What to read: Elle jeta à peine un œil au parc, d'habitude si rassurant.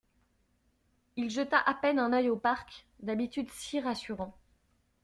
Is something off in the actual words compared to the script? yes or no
yes